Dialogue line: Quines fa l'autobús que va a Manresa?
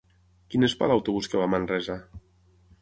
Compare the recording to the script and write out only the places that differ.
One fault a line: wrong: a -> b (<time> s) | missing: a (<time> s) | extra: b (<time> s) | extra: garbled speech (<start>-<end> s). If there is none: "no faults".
no faults